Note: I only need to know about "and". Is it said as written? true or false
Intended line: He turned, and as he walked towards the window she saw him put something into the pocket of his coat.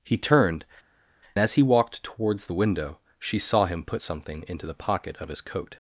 false